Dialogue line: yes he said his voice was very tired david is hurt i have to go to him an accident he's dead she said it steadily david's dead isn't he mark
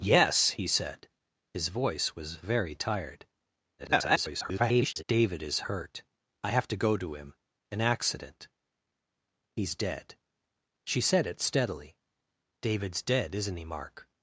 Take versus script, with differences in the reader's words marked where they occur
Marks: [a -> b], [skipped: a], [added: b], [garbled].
yes he said his voice was very tired [garbled] david is hurt i have to go to him an accident he's dead she said it steadily david's dead isn't he mark